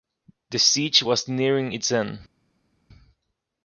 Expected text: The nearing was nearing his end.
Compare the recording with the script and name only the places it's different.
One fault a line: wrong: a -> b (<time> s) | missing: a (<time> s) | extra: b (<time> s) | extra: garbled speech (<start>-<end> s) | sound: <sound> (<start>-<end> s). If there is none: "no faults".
wrong: nearing -> siege (0.6 s)
wrong: his -> its (1.7 s)